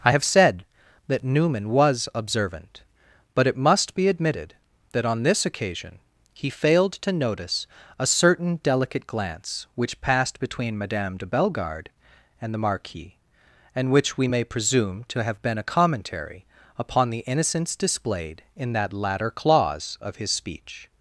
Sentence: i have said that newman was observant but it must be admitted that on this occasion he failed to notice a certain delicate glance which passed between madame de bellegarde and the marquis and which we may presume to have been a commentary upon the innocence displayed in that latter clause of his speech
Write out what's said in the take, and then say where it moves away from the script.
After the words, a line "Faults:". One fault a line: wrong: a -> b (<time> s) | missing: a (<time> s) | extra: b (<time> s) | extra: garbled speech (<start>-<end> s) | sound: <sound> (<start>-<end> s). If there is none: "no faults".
i have said that newman was observant but it must be admitted that on this occasion he failed to notice a certain delicate glance which passed between madame de bellegarde and the marquis and which we may presume to have been a commentary upon the innocence displayed in that latter clause of his speech
Faults:
no faults